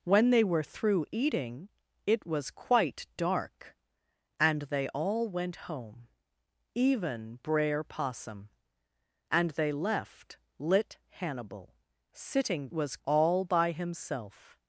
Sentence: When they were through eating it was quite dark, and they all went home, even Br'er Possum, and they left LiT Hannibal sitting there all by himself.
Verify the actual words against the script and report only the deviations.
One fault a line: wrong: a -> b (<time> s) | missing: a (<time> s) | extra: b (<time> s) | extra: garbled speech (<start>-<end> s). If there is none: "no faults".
wrong: there -> was (12.7 s)